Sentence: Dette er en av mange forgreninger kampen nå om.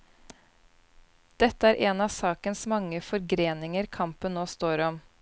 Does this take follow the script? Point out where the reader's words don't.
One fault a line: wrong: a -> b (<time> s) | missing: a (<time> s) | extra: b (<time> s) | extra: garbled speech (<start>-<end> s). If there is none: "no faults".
extra: sakens (2.1 s)
extra: står (4.6 s)